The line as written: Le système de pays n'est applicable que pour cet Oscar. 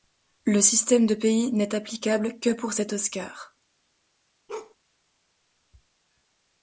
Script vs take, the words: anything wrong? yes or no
no